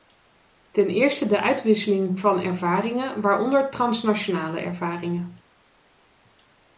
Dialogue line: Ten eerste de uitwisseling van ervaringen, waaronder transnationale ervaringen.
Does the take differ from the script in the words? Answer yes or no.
no